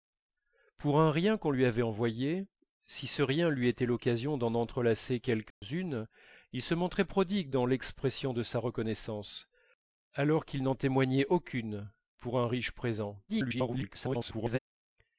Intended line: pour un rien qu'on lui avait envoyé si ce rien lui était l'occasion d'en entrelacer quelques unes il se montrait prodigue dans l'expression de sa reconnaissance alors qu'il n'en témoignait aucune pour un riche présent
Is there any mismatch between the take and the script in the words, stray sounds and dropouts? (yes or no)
yes